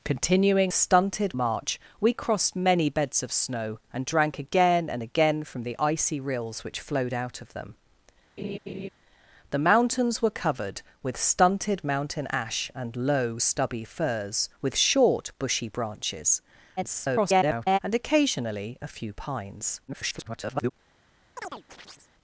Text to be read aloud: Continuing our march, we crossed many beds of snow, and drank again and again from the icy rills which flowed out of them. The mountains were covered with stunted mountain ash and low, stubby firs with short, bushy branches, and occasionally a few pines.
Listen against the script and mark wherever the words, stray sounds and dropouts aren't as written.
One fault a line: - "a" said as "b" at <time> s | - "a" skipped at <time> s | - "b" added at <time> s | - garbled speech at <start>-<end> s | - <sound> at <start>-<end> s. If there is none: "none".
- "our" said as "stunted" at 0.7 s
- laugh at 8.4-8.9 s
- garbled speech at 16.8-17.8 s
- garbled speech at 19.9-20.7 s
- chirp at 21.4-22.1 s